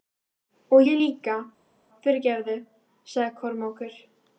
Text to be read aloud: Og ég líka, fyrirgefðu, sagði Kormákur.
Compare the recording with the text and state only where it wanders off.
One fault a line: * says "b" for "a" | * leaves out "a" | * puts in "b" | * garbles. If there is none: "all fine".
all fine